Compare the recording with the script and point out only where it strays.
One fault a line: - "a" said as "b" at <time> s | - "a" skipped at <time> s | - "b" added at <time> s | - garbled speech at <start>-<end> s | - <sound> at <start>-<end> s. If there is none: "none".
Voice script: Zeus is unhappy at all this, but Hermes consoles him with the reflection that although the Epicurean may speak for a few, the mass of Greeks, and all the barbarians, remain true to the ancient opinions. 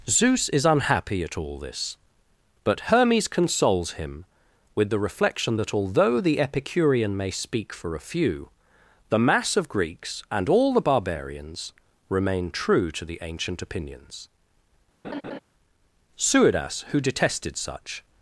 - laugh at 15.0-15.4 s
- "Suidas who detested such" added at 16.2 s